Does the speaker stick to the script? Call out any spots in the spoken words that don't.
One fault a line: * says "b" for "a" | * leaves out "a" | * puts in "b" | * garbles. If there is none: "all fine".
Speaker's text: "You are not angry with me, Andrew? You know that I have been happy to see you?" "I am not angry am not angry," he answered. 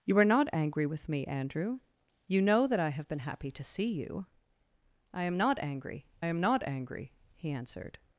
all fine